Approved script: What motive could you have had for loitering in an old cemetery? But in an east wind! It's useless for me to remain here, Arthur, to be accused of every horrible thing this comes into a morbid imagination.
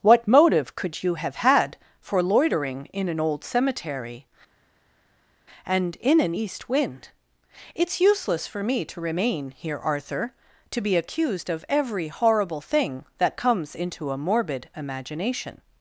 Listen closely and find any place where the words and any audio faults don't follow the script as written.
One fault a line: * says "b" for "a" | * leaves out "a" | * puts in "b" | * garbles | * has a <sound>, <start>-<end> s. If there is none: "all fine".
* says "And" for "But"
* says "that" for "this"